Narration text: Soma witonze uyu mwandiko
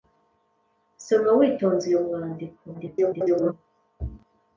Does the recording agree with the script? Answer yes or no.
no